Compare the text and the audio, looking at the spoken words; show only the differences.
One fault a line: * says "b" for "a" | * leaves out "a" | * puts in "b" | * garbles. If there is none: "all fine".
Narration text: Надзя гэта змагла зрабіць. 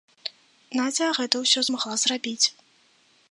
* puts in "ўсё"